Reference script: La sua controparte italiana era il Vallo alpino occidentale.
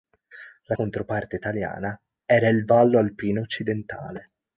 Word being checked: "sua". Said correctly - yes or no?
no